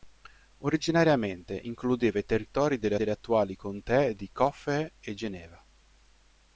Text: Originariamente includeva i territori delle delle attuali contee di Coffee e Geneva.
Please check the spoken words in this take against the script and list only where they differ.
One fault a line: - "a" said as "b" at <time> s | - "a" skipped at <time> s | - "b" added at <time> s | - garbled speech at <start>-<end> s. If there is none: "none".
none